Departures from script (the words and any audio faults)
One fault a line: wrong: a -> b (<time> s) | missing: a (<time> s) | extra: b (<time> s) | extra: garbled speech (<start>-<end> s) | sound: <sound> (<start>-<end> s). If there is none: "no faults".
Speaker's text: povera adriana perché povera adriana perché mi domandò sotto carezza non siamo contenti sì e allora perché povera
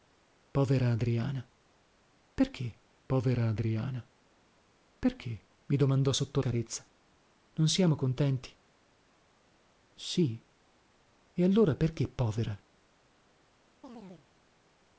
sound: chirp (13.8-14.3 s)